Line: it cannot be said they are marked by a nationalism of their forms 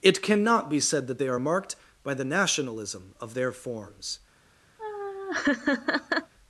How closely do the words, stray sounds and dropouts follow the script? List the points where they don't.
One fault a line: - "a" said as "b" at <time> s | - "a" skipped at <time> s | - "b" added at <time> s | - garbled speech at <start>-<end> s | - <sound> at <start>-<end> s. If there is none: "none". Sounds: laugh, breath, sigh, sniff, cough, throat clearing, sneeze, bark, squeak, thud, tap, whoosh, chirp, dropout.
- "that" added at 1.1 s
- "a" said as "the" at 2.1 s
- laugh at 4.8-6.3 s